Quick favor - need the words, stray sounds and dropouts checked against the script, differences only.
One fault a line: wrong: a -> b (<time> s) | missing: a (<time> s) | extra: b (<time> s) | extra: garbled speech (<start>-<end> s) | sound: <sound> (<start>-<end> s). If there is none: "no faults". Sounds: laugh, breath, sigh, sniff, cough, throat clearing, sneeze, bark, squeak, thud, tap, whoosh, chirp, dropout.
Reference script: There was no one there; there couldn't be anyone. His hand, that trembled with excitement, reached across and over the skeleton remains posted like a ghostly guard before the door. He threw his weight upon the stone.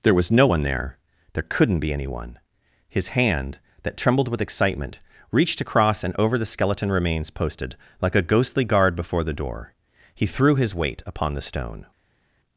no faults